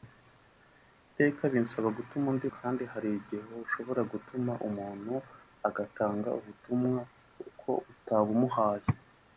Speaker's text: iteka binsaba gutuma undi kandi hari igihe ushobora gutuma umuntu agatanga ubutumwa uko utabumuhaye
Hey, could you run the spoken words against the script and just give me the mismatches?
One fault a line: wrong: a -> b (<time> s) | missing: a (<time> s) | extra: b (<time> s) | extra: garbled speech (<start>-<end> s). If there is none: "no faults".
no faults